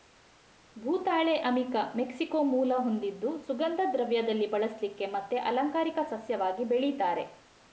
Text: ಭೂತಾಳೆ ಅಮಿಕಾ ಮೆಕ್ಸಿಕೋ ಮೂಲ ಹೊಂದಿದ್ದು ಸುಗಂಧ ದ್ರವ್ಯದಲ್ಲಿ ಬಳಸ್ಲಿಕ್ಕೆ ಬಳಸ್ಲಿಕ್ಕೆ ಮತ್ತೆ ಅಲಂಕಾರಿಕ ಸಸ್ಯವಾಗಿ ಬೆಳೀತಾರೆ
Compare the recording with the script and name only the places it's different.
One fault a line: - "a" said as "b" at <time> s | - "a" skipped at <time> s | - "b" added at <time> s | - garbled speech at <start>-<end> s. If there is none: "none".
- "ಬಳಸ್ಲಿಕ್ಕೆ" skipped at 5.1 s